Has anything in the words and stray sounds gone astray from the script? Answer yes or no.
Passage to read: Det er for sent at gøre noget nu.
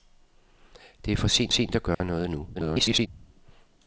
yes